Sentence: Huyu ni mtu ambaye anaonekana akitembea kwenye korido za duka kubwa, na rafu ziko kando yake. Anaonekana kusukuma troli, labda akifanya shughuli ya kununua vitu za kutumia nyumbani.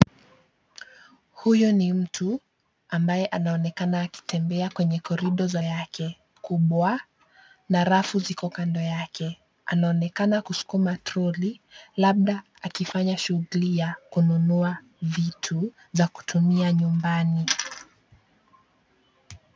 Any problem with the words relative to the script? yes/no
yes